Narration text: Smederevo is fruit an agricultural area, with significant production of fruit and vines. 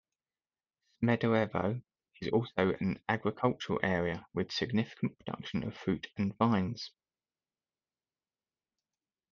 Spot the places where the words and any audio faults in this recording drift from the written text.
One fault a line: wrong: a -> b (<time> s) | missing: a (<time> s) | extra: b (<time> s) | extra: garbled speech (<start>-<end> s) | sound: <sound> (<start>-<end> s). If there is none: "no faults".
wrong: fruit -> also (2.3 s)